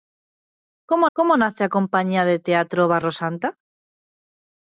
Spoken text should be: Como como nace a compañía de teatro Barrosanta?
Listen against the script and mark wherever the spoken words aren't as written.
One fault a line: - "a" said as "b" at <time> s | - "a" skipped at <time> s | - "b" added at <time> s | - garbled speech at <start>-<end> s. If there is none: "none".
none